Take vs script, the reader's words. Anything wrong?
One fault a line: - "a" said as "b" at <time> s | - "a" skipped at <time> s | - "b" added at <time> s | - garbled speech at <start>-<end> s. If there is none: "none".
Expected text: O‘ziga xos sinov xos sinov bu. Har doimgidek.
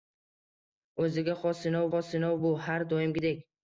none